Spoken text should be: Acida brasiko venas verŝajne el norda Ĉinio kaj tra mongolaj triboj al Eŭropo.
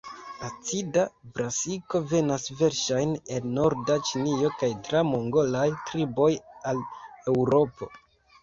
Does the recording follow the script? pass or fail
pass